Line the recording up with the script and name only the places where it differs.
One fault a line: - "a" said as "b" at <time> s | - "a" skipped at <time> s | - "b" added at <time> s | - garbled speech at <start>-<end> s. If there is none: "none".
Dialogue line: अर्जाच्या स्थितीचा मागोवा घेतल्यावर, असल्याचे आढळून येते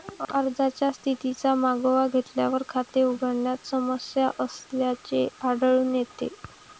- "खाते उघडण्यात समस्या" added at 2.7 s